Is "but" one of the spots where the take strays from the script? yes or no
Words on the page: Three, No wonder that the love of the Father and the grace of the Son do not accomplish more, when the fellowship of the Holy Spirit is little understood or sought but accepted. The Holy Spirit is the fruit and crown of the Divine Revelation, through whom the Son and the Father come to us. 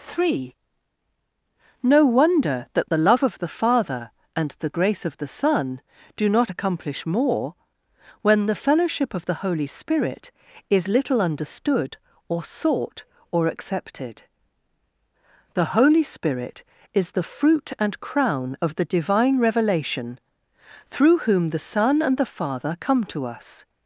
yes